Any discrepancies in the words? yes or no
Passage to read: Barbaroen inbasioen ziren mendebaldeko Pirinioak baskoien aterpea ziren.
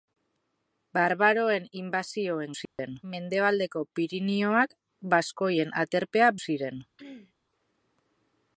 no